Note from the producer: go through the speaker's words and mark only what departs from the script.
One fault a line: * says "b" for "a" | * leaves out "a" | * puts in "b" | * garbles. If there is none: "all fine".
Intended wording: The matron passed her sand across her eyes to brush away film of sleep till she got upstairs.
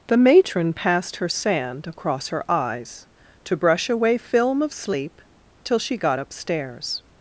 all fine